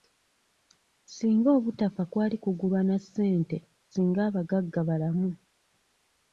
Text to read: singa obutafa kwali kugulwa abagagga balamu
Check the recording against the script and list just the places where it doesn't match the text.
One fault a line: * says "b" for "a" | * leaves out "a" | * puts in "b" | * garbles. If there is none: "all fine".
* puts in "na ssente singa"